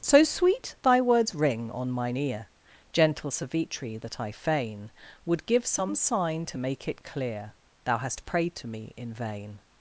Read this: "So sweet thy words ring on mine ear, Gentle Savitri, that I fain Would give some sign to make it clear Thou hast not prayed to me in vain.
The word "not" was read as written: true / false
false